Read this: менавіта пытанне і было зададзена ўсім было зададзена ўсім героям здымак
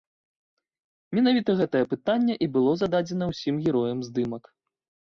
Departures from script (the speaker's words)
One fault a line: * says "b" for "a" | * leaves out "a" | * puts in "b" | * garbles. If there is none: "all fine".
* puts in "гэтае"
* leaves out "было зададзена ўсім"